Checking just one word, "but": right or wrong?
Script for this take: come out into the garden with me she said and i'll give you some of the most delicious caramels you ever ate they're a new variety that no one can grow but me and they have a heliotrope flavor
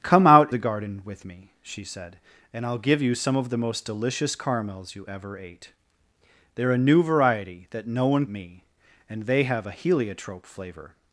wrong